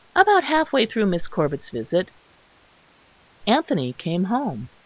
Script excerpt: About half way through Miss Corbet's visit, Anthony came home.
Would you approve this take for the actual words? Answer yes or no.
yes